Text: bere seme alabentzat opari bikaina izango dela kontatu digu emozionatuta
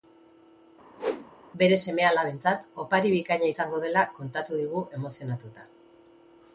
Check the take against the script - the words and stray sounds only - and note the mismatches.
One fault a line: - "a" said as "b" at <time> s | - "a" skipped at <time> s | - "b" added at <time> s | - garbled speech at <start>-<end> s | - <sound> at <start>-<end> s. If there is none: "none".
- whoosh at 1.0-1.3 s